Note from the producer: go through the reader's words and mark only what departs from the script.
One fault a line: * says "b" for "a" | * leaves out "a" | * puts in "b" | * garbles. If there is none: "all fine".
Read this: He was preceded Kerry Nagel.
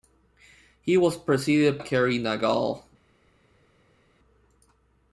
all fine